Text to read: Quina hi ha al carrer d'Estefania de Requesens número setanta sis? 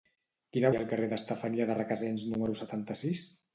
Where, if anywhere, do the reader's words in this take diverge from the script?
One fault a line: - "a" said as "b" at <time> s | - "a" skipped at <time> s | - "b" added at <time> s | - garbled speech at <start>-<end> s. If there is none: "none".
none